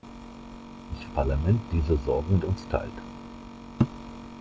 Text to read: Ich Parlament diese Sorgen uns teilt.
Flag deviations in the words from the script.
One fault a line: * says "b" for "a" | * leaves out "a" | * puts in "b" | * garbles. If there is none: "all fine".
all fine